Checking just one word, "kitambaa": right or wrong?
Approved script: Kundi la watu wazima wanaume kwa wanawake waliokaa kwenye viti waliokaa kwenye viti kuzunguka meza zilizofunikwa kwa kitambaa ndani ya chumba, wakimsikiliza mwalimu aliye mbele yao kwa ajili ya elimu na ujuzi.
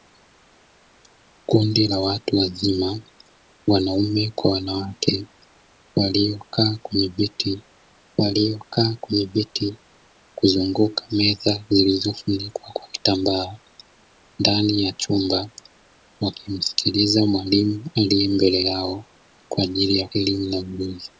right